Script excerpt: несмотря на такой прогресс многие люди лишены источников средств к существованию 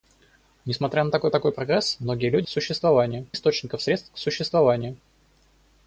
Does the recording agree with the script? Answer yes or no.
no